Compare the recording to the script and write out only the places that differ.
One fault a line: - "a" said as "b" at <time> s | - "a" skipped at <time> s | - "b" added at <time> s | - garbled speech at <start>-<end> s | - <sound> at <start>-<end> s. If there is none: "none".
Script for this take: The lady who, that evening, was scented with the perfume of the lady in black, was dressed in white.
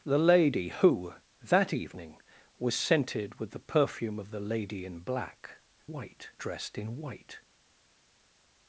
- "was" said as "white" at 5.9 s